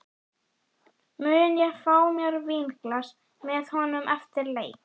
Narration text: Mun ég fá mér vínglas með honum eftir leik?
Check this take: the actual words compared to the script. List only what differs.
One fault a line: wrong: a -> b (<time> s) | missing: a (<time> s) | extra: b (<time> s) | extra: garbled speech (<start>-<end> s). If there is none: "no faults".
no faults